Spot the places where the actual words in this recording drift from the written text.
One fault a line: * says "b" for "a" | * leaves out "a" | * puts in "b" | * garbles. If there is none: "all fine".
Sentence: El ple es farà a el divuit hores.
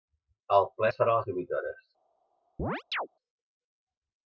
* says "les" for "el"